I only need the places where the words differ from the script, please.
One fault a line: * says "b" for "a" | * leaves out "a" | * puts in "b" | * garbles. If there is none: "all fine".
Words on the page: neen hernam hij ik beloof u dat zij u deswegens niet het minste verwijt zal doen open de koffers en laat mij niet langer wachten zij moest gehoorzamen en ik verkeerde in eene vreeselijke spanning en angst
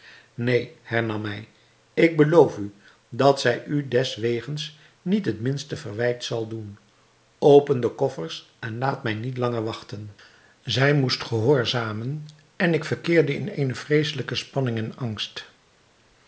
all fine